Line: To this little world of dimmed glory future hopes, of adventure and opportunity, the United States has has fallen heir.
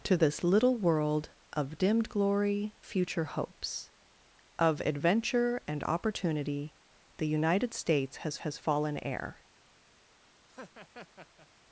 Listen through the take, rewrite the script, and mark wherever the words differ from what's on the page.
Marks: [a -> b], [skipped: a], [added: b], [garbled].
To this little world of dimmed glory future hopes, of adventure and opportunity, the United States has has fallen heir.